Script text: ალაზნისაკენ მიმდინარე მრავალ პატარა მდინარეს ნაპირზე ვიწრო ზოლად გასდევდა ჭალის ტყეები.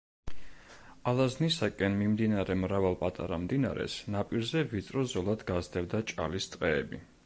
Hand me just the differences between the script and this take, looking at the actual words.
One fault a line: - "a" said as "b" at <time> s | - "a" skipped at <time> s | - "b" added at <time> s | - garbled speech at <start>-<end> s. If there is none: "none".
none